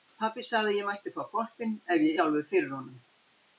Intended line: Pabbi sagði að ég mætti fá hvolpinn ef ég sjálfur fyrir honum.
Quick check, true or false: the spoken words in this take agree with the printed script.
true